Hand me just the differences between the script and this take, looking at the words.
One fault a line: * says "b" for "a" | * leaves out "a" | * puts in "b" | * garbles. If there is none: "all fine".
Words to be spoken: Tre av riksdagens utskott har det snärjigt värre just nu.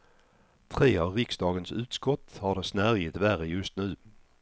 all fine